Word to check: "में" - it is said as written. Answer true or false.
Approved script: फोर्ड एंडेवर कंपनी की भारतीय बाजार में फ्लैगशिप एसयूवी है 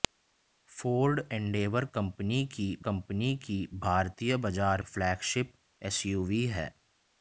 false